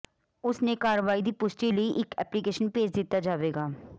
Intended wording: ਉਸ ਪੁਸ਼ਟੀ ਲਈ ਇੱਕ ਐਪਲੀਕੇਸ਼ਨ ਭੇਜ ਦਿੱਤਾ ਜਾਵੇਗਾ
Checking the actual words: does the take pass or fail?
fail